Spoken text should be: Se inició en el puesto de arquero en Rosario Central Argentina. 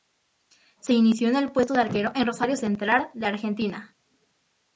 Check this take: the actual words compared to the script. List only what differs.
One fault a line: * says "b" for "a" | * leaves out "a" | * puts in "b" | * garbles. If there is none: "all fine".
* puts in "de"